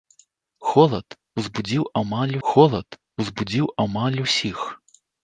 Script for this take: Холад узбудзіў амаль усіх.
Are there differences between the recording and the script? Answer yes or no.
yes